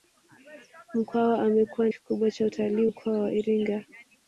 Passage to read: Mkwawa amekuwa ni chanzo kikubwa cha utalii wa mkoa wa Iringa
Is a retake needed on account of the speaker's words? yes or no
yes